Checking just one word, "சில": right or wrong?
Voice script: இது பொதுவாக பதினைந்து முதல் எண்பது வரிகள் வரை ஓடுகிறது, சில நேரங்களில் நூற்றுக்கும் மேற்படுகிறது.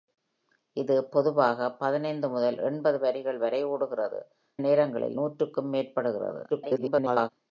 wrong